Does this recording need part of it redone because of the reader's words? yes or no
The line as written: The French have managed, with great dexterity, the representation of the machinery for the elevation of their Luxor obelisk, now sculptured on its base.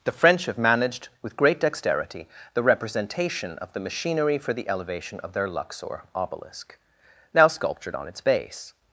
no